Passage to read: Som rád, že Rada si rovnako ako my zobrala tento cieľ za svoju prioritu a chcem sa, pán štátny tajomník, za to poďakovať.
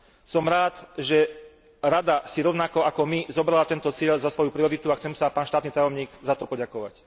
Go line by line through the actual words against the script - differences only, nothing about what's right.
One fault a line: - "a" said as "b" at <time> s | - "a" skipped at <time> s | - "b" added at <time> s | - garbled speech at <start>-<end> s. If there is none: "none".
none